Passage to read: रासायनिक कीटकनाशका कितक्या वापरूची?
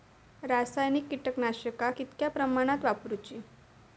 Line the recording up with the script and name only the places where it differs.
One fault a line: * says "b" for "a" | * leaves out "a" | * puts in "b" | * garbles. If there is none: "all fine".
* puts in "प्रमाणात"